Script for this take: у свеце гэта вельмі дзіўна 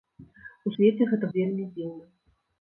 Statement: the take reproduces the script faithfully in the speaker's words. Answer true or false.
true